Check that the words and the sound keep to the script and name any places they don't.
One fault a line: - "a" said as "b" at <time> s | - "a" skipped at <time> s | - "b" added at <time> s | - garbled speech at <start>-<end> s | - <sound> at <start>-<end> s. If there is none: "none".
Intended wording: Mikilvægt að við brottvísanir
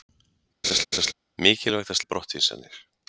- laugh at 0.6-1.1 s